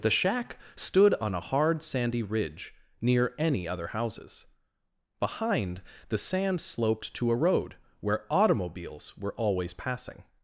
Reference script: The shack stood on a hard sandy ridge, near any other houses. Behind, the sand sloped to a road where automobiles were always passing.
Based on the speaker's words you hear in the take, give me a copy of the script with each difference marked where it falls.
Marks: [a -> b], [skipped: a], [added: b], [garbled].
The shack stood on a hard sandy ridge, near any other houses. Behind, the sand sloped to a road where automobiles were always passing.